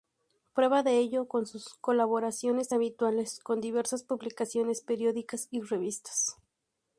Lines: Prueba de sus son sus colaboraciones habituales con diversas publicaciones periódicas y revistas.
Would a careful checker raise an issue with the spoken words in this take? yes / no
yes